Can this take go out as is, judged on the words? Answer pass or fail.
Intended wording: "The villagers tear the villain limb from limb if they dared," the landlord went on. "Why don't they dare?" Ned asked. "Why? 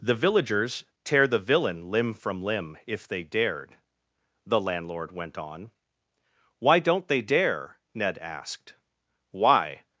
pass